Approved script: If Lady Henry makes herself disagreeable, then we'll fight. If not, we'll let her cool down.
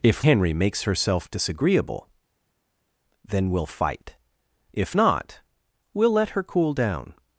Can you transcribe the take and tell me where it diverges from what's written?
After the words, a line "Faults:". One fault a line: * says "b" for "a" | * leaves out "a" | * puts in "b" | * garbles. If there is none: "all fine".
If Henry makes herself disagreeable, then we'll fight. If not, we'll let her cool down.
Faults:
* leaves out "Lady"